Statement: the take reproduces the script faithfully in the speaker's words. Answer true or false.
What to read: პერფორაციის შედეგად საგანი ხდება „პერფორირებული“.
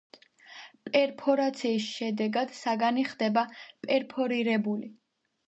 true